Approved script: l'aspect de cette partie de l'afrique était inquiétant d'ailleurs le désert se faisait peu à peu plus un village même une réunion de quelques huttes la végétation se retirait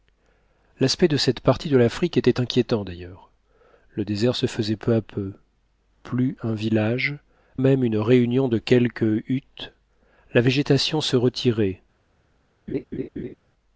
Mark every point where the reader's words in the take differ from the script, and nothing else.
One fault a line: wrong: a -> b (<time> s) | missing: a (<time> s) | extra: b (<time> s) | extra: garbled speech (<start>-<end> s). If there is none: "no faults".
no faults